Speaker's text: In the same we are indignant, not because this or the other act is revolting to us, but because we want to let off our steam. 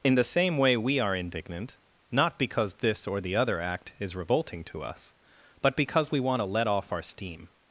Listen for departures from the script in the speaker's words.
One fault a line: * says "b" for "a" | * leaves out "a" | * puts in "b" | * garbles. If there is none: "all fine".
* puts in "way"